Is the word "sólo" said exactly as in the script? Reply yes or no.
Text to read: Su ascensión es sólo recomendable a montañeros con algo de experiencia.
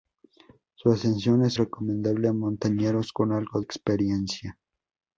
no